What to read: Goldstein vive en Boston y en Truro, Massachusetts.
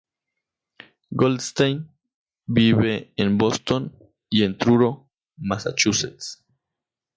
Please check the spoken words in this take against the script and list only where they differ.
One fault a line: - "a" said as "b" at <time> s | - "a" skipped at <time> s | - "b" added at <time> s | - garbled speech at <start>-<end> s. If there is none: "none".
none